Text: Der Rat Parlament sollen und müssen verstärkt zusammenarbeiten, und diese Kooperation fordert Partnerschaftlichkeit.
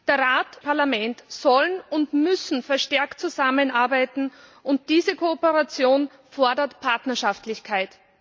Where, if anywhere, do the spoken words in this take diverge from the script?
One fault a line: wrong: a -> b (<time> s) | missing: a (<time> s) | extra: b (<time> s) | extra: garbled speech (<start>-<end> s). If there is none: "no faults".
no faults